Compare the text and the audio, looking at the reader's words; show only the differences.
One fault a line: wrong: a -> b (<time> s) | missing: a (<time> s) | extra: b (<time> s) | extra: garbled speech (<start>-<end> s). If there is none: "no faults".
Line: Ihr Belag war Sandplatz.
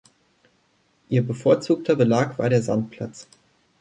extra: bevorzugter (1.2 s)
extra: der (2.5 s)